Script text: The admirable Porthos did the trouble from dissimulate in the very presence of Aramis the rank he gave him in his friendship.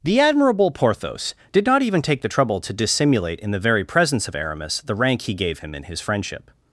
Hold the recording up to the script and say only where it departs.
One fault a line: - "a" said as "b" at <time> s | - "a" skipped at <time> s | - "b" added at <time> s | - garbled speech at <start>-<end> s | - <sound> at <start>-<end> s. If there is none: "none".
- "not even take" added at 1.6 s
- "from" said as "to" at 2.6 s